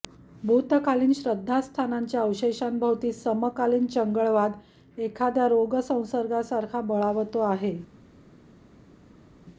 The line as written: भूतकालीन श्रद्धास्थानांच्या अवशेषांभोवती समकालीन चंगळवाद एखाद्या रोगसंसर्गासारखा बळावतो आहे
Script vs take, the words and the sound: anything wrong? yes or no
no